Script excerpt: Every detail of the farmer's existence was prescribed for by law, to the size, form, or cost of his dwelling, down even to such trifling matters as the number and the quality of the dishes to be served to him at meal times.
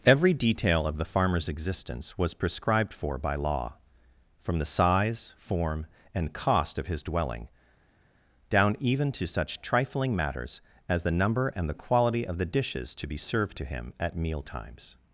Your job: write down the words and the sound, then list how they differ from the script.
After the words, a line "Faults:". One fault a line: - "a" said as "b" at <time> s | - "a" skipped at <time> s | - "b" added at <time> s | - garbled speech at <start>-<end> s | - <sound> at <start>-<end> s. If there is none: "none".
Every detail of the farmer's existence was prescribed for by law, from the size, form, and cost of his dwelling, down even to such trifling matters as the number and the quality of the dishes to be served to him at meal times.
Faults:
- "to" said as "from" at 4.4 s
- "or" said as "and" at 6.2 s